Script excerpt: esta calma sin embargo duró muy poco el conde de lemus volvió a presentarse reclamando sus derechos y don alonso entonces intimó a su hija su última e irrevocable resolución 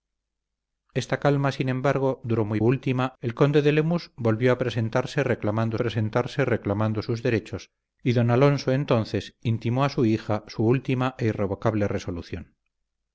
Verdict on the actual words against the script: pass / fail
fail